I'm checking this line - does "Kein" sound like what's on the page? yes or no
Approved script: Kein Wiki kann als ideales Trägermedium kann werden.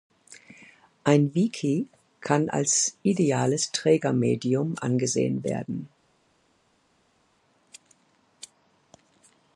no